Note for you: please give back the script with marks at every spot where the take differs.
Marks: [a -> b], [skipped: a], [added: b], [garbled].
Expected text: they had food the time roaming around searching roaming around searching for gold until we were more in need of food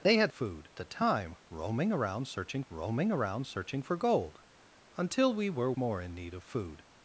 they had food the time roaming around searching roaming around searching for gold until we were more in need of food